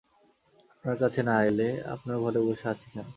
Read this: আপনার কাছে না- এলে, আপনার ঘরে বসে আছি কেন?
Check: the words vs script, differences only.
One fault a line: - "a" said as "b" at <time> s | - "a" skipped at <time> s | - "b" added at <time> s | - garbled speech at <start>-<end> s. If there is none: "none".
none